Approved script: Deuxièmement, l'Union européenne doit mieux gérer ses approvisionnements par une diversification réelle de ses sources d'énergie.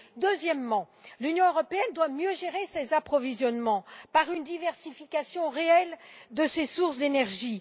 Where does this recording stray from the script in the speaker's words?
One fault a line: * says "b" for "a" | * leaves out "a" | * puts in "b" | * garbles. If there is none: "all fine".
all fine